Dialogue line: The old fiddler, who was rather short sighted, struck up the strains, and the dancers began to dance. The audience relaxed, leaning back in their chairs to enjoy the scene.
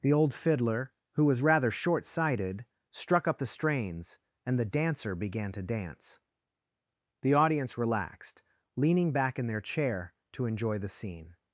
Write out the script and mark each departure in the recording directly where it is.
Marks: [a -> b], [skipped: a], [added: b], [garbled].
The old fiddler, who was rather short sighted, struck up the strains, and the [dancers -> dancer] began to dance. The audience relaxed, leaning back in their [chairs -> chair] to enjoy the scene.